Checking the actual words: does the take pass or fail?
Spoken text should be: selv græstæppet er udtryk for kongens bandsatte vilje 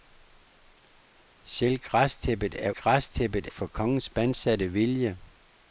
fail